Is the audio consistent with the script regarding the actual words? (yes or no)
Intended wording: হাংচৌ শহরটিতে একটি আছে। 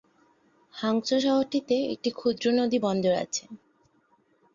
no